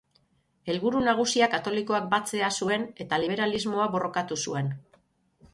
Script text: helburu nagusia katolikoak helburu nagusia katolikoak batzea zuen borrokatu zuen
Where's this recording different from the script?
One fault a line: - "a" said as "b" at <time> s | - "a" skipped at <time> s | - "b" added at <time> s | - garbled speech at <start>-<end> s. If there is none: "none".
- "helburu nagusia katolikoak batzea zuen" said as "batzea zuen eta liberalismoa" at 2.1 s